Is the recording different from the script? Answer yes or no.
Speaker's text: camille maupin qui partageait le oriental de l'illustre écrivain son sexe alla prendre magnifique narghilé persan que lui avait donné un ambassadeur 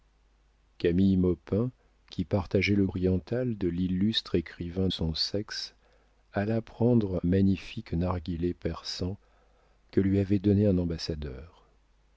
no